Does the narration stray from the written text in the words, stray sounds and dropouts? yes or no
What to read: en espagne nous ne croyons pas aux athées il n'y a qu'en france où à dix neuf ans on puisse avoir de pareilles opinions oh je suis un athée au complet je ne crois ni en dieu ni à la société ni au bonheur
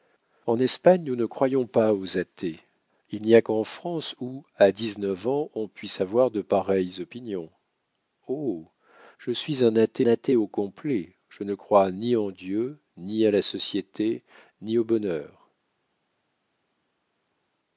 yes